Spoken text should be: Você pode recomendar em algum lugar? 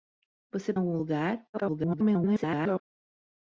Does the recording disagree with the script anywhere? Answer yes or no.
yes